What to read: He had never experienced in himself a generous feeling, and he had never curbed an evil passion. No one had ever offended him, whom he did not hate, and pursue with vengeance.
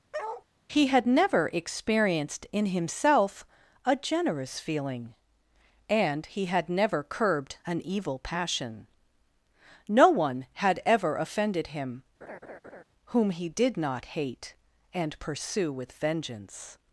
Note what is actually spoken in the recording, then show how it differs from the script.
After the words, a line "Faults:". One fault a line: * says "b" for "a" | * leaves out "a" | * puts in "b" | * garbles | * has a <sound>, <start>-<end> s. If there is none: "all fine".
He had never experienced in himself a generous feeling, and he had never curbed an evil passion. No one had ever offended him, whom he did not hate, and pursue with vengeance.
Faults:
* has a bark, 0.1-0.4 s
* has a laugh, 12.2-12.8 s